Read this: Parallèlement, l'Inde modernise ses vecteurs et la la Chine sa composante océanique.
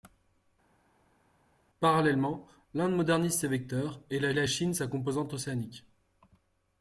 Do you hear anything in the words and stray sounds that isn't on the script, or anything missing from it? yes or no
no